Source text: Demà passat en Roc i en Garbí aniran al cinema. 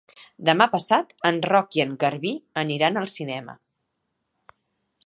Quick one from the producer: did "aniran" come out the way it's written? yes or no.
yes